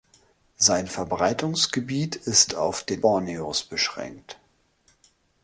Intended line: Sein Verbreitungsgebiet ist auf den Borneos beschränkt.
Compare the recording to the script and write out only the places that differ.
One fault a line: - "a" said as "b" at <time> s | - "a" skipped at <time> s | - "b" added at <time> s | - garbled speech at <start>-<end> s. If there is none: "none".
none